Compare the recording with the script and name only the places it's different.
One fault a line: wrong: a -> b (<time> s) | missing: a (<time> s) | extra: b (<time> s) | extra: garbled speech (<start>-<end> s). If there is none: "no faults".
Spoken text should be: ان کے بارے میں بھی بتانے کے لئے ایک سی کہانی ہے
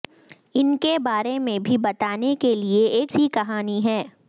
no faults